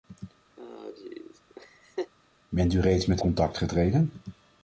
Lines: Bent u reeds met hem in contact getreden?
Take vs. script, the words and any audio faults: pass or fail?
fail